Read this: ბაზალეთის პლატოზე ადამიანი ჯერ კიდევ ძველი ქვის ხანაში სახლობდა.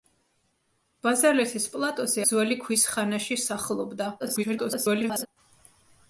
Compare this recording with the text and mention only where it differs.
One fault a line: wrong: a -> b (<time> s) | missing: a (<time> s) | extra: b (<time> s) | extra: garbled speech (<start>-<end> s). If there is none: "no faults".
missing: ადამიანი ჯერ კიდევ (2.2 s)
extra: garbled speech (4.2-5.3 s)